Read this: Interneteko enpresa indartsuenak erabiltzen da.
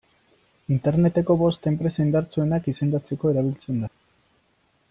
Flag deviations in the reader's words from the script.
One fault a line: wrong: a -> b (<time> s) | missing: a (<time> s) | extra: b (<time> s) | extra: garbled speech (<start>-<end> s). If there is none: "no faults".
extra: bost (1.4 s)
extra: izendatzeko (2.7 s)